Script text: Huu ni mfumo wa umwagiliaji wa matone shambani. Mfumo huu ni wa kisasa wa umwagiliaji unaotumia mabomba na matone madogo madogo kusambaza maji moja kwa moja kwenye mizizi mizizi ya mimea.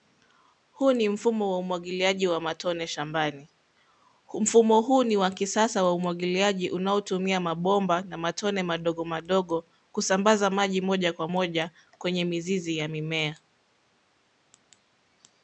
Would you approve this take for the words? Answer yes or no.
no